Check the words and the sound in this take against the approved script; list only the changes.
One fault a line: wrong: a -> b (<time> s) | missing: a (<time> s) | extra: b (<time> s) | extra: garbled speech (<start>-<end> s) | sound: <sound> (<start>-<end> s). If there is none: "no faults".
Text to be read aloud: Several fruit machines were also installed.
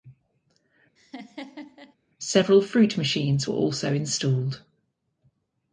sound: laugh (1.0-2.0 s)